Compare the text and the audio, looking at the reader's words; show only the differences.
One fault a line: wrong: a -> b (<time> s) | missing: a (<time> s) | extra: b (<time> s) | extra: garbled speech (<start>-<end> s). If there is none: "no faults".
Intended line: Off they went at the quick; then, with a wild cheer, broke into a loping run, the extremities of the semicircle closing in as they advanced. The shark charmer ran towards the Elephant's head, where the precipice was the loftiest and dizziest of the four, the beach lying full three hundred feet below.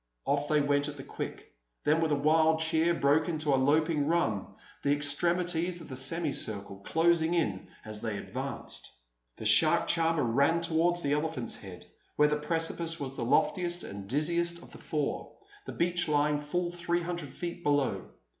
no faults